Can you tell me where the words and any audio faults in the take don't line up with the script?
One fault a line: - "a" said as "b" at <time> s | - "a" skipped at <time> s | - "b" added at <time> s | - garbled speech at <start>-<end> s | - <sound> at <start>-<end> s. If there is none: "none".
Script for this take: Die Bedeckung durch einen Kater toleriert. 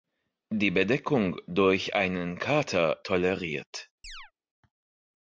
- chirp at 4.0-4.3 s